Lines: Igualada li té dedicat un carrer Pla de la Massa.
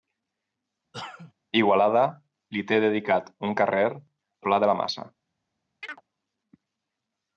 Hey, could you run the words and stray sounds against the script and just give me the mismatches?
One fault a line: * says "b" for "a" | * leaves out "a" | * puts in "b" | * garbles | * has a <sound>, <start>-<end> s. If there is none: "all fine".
* has a cough, 0.9-1.3 s
* has a chirp, 5.8-6.0 s